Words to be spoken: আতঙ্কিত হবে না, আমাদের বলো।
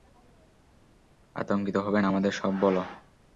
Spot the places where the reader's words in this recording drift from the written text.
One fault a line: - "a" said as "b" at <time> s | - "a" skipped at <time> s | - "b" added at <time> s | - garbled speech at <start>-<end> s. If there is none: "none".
- "সব" added at 2.3 s